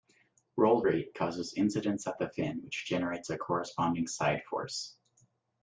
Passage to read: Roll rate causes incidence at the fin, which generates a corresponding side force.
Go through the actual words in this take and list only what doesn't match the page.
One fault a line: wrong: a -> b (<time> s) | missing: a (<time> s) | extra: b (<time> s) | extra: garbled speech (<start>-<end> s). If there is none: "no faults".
no faults